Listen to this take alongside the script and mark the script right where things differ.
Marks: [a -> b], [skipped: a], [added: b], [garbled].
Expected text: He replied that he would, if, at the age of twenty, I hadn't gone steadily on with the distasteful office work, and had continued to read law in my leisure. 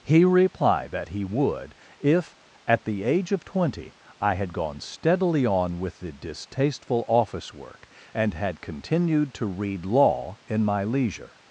He replied that he would, if, at the age of twenty, I [hadn't -> had] gone steadily on with the distasteful office work, and had continued to read law in my leisure.